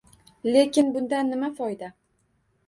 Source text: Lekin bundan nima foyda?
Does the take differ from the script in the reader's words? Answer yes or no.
no